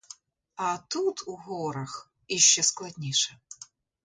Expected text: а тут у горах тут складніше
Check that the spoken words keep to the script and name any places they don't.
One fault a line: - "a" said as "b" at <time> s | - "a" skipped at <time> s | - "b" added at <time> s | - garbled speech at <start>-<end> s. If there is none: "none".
- "тут" said as "іще" at 2.3 s